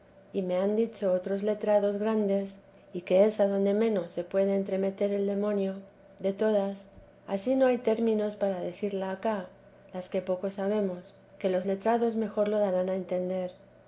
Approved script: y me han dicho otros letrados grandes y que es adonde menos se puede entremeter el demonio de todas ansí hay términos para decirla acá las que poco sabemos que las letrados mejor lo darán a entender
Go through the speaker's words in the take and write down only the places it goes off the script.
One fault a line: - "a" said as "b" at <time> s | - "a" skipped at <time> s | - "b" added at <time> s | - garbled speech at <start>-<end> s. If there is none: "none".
- "no" added at 7.5 s
- "las" said as "los" at 11.5 s